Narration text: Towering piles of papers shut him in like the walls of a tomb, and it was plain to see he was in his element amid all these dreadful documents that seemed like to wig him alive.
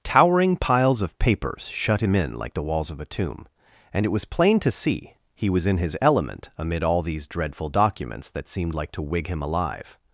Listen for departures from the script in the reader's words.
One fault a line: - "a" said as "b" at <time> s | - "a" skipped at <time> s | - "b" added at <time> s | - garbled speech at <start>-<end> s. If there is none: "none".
none